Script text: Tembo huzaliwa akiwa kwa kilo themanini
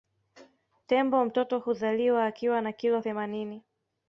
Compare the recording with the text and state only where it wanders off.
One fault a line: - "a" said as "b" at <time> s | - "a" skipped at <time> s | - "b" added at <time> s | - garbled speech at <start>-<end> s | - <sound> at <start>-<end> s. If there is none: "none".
- "mtoto" added at 1.2 s
- "kwa" said as "na" at 2.6 s